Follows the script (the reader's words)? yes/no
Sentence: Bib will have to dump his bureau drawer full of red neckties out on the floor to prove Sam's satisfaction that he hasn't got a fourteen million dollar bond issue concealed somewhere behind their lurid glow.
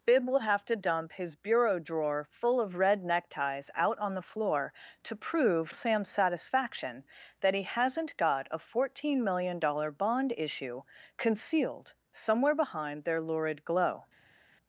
yes